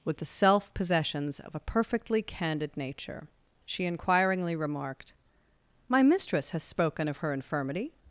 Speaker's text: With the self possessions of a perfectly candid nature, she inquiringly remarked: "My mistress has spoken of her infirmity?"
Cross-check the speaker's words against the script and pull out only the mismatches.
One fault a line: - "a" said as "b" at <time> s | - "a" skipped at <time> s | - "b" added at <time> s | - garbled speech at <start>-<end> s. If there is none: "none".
none